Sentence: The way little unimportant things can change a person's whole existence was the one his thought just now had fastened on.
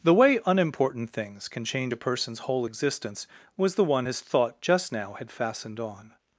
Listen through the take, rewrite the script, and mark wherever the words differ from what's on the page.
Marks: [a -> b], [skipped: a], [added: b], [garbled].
The way [skipped: little] unimportant things can change a person's whole existence was the one his thought just now had fastened on.